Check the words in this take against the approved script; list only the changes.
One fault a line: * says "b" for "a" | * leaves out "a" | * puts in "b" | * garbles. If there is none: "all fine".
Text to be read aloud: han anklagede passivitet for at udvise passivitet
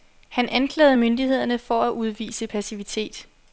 * says "myndighederne" for "passivitet"